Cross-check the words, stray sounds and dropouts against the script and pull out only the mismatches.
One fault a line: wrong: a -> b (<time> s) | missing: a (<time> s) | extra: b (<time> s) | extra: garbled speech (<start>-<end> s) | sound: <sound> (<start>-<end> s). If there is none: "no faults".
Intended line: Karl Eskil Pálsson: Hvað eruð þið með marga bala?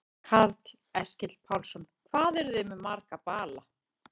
no faults